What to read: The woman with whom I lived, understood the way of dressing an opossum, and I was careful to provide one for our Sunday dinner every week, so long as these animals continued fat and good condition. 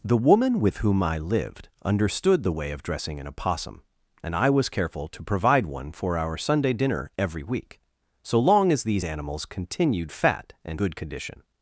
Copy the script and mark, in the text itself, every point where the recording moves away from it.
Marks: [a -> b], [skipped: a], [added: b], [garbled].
The woman with whom I lived, understood the way of dressing an opossum, and I was careful to provide one for our Sunday dinner every week, so long as these animals continued fat and good condition.